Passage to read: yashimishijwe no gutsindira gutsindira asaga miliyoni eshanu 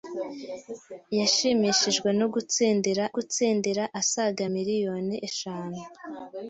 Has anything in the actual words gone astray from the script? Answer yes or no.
no